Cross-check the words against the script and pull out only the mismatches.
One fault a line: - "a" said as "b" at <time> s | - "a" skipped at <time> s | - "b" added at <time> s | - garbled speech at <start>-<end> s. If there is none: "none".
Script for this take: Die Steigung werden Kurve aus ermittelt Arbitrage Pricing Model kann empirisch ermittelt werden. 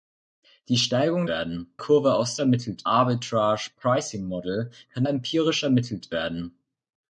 none